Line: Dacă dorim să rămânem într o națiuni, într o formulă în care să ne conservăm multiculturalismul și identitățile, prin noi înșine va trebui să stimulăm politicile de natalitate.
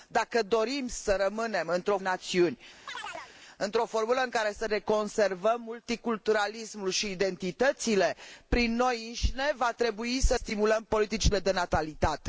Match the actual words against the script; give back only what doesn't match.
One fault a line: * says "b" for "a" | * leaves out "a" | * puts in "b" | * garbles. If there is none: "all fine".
all fine